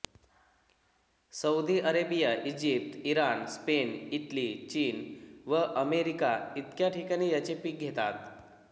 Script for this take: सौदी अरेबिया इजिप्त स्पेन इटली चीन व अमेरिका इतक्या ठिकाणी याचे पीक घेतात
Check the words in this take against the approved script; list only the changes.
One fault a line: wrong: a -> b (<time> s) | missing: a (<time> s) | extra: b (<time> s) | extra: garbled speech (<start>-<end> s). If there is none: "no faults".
extra: इराण (3.1 s)